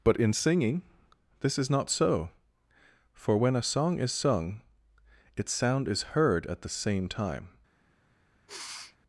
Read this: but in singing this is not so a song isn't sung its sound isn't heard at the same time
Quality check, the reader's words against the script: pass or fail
fail